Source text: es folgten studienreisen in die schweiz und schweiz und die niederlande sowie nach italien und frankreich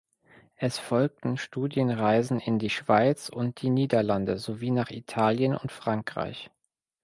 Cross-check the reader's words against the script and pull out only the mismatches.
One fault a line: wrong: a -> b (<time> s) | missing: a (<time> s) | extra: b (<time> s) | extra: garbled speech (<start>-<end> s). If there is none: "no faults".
missing: schweiz und (3.6 s)